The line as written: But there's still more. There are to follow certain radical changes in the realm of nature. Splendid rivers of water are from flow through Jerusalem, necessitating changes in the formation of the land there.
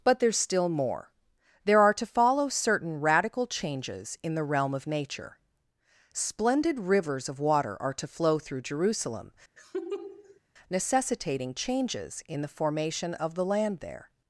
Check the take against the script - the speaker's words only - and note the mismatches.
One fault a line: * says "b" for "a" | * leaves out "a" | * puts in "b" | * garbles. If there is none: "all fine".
* says "to" for "from"